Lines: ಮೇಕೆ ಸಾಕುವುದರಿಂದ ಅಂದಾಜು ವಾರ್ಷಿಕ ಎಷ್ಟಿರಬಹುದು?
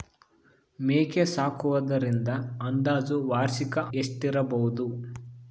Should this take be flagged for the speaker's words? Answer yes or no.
no